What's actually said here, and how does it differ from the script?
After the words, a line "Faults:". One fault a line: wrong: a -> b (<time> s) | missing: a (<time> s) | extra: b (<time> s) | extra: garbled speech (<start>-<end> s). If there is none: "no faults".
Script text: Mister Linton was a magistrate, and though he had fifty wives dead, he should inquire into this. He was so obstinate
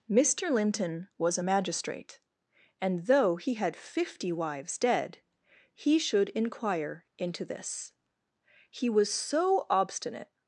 Mister Linton was a magistrate, and though he had fifty wives dead, he should inquire into this. He was so obstinate
Faults:
no faults